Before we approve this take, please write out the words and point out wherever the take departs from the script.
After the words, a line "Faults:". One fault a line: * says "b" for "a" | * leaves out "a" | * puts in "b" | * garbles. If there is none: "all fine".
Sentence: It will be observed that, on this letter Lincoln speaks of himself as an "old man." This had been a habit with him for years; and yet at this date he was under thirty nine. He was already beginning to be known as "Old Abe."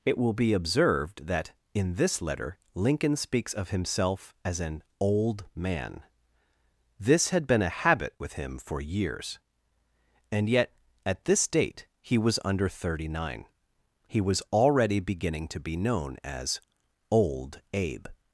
It will be observed that, in this letter Lincoln speaks of himself as an "old man." This had been a habit with him for years; and yet at this date he was under thirty nine. He was already beginning to be known as "Old Abe."
Faults:
* says "in" for "on"